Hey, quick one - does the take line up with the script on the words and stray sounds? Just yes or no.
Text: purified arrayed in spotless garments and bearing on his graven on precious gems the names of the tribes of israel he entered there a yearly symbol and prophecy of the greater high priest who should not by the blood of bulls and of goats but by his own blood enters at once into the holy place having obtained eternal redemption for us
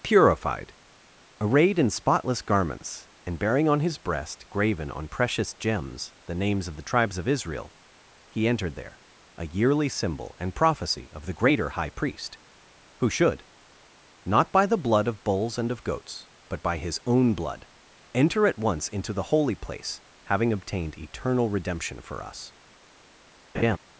no